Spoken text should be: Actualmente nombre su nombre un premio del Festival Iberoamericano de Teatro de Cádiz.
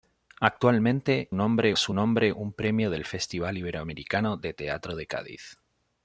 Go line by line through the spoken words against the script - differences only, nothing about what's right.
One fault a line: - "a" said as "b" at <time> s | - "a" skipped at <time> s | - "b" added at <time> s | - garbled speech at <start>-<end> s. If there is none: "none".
none